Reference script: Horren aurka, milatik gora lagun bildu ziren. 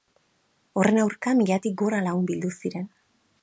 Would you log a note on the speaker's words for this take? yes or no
no